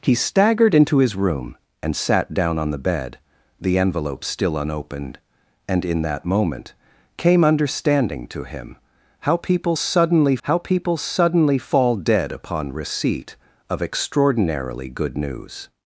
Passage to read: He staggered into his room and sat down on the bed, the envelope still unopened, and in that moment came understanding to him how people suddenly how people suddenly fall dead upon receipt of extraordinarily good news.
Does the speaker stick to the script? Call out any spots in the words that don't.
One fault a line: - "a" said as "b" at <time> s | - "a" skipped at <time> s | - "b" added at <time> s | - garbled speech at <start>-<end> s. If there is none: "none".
none